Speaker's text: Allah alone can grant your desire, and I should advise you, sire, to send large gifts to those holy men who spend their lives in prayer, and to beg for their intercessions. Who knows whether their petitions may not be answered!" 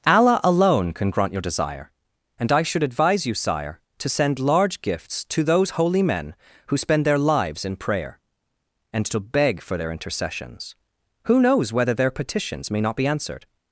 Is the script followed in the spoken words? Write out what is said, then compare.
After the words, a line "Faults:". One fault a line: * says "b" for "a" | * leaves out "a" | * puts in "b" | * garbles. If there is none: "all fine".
Allah alone can grant your desire, and I should advise you, sire, to send large gifts to those holy men who spend their lives in prayer, and to beg for their intercessions. Who knows whether their petitions may not be answered!"
Faults:
all fine